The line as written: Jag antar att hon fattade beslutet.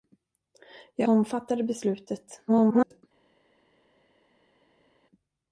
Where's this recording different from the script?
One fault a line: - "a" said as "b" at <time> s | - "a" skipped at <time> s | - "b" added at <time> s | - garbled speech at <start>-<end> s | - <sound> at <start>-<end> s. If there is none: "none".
- "antar att" skipped at 1.1 s
- garbled speech at 2.5-3.0 s